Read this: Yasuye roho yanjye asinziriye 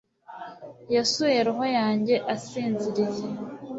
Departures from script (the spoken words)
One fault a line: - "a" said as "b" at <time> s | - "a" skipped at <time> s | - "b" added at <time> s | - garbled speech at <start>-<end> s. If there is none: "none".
none